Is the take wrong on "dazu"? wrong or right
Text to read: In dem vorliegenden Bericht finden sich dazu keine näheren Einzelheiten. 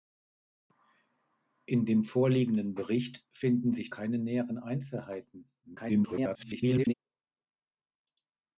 wrong